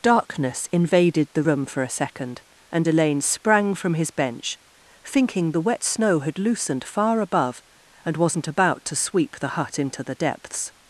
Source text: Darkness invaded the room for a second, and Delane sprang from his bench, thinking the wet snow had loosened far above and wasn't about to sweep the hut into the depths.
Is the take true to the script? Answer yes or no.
yes